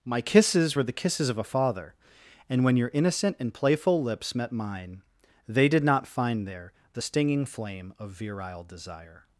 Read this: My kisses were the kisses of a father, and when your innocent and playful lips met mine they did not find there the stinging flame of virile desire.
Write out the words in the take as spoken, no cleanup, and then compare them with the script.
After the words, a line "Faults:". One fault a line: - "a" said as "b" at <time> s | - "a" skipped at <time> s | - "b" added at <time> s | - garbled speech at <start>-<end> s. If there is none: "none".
My kisses were the kisses of a father, and when your innocent and playful lips met mine they did not find there the stinging flame of virile desire.
Faults:
none